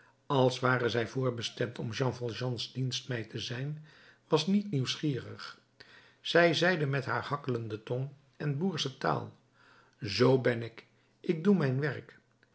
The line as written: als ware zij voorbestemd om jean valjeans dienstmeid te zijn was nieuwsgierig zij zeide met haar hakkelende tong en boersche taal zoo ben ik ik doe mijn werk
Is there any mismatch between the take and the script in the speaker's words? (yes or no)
yes